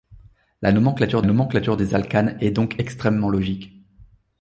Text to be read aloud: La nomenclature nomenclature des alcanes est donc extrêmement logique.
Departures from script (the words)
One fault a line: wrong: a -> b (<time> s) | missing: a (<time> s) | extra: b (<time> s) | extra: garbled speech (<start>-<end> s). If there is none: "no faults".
no faults